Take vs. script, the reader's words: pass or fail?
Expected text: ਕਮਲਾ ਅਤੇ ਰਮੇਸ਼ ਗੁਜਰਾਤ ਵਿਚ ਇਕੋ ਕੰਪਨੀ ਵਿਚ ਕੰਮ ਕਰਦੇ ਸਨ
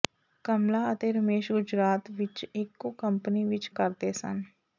fail